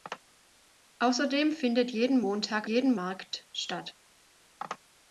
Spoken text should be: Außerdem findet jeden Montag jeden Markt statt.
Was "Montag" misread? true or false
false